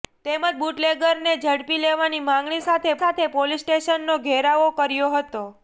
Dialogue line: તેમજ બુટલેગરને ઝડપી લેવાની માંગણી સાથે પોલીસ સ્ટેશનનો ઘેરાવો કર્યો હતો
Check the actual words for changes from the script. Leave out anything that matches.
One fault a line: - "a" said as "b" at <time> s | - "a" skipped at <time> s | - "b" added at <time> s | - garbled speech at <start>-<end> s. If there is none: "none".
- "સાથે" added at 3.0 s